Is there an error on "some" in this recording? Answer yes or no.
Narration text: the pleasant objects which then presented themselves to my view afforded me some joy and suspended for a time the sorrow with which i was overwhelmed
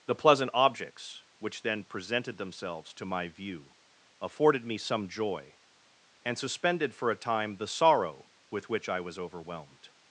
no